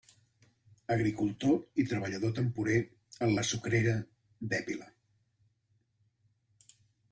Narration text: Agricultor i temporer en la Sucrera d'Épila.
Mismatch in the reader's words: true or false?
true